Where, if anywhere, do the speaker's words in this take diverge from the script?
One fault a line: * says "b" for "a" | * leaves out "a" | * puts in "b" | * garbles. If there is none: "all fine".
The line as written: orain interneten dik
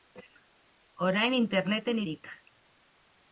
all fine